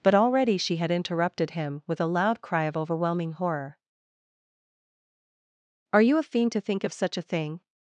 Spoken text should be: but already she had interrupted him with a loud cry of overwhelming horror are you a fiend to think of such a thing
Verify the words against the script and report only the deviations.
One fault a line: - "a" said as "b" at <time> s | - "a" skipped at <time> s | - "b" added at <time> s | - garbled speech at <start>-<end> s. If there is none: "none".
none